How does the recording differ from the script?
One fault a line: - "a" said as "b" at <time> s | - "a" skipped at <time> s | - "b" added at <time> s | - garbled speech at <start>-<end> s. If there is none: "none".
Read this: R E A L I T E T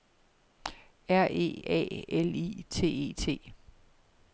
none